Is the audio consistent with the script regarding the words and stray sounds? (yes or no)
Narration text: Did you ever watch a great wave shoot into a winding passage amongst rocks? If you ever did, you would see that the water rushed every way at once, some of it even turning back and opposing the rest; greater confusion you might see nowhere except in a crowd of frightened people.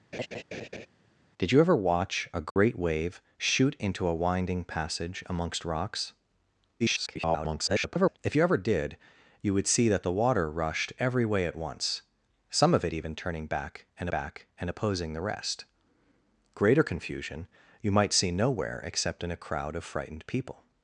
no